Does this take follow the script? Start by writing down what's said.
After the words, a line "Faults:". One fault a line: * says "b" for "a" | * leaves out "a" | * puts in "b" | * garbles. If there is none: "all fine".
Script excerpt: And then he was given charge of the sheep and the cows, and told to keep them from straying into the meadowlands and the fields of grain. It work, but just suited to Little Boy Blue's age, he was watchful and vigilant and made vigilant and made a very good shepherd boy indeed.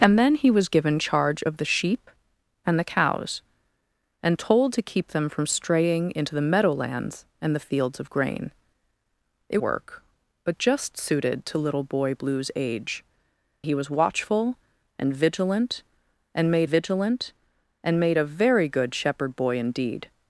And then he was given charge of the sheep and the cows, and told to keep them from straying into the meadowlands and the fields of grain. It work, but just suited to Little Boy Blue's age, he was watchful and vigilant and made vigilant and made a very good shepherd boy indeed.
Faults:
all fine